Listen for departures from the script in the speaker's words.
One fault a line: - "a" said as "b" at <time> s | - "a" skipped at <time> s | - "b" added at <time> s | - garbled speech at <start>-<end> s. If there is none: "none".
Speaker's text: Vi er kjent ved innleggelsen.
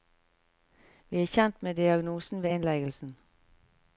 - "med diagnosen" added at 1.6 s